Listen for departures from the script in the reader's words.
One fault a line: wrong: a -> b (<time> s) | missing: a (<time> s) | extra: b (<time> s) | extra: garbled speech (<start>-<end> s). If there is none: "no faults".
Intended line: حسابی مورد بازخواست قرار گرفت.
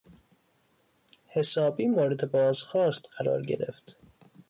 no faults